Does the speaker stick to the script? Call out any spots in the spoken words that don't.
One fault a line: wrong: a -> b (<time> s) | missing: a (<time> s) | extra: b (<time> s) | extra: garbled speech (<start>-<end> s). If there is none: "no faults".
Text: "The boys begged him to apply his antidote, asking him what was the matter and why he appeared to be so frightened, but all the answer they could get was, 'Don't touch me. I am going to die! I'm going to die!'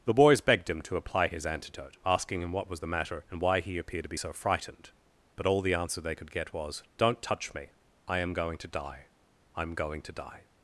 no faults